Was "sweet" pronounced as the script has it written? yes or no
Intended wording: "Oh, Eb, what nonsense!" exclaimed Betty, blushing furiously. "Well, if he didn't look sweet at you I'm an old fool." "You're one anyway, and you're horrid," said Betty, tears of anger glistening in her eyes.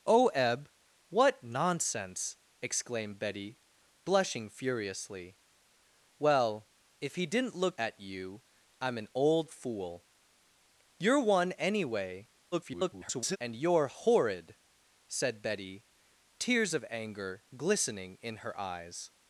no